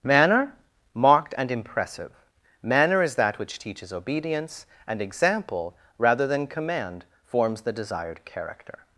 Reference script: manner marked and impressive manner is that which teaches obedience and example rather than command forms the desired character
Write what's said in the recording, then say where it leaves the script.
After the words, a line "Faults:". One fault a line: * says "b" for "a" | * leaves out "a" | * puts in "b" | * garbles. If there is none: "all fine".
manner marked and impressive manner is that which teaches obedience and example rather than command forms the desired character
Faults:
all fine